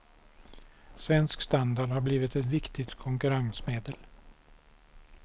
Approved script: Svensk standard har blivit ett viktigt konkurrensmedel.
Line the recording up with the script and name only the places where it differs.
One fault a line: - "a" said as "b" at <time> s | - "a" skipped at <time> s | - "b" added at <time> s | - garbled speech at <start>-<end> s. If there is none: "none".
none